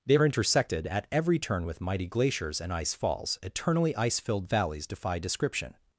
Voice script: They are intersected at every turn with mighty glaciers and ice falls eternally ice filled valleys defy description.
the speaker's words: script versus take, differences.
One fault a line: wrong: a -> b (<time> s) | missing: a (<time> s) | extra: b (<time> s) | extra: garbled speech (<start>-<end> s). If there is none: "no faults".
no faults